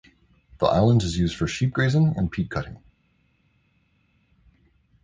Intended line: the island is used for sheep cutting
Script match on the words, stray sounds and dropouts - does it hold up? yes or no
no